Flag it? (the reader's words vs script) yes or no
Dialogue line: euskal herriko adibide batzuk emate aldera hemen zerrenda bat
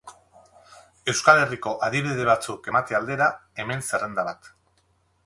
no